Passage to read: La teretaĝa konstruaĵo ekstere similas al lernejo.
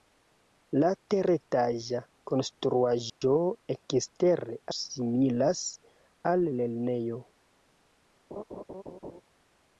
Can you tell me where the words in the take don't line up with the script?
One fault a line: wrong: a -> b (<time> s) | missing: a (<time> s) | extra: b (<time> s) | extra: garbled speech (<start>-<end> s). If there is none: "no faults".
no faults